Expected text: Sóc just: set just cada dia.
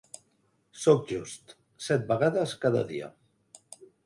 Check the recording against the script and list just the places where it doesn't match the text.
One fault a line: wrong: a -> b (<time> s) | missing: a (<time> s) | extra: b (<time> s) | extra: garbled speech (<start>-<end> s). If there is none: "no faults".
wrong: just -> vegades (2.1 s)